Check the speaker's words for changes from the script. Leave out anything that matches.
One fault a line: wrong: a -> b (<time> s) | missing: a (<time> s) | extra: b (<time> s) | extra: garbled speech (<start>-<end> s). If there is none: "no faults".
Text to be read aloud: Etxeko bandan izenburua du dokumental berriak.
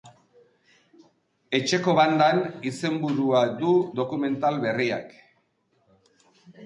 no faults